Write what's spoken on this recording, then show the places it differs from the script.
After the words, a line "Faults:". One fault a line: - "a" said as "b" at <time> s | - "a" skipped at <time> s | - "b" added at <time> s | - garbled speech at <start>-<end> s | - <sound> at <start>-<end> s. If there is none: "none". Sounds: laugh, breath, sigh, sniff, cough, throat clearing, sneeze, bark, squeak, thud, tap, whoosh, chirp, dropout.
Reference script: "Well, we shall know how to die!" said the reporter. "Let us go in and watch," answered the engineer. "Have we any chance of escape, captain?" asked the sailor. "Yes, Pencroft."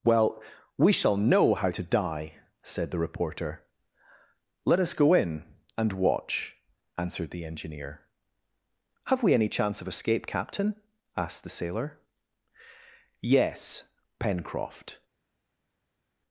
"Well, we shall know how to die!" said the reporter. "Let us go in and watch," answered the engineer. "Have we any chance of escape, captain?" asked the sailor. "Yes, Pencroft."
Faults:
none